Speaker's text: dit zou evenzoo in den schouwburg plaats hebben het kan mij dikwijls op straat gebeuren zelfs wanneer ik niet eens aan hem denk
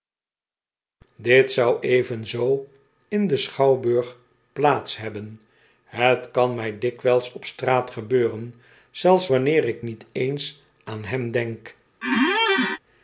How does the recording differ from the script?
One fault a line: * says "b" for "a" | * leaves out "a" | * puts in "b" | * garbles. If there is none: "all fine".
all fine